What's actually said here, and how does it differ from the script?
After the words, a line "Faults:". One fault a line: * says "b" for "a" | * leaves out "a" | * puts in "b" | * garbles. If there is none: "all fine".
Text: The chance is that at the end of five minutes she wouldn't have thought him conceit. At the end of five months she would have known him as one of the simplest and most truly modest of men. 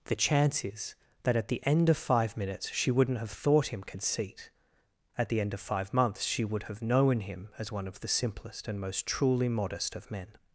The chance is that at the end of five minutes she wouldn't have thought him conceit. At the end of five months she would have known him as one of the simplest and most truly modest of men.
Faults:
all fine